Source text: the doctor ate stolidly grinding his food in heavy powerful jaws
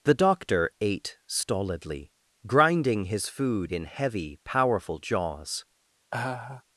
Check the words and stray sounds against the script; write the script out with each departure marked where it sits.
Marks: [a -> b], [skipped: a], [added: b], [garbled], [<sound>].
the doctor ate stolidly grinding his food in heavy powerful jaws [laugh]